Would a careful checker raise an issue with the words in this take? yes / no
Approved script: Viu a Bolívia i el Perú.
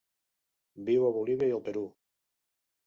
no